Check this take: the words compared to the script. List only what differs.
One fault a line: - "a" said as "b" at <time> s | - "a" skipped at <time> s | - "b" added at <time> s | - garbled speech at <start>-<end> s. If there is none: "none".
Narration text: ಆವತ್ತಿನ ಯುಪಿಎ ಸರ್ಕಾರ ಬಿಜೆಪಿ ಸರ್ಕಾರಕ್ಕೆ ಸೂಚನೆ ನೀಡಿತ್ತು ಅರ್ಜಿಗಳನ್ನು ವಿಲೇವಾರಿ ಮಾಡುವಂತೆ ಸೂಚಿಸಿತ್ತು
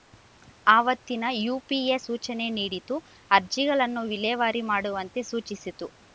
- "ಸರ್ಕಾರ ಬಿಜೆಪಿ ಸರ್ಕಾರಕ್ಕೆ" skipped at 2.0 s